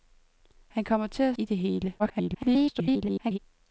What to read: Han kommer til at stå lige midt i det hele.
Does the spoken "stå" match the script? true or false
false